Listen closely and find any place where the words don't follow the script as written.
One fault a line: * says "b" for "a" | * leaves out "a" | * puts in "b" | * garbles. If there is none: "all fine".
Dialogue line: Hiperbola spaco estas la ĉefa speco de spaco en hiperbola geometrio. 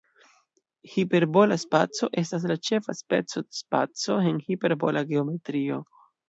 all fine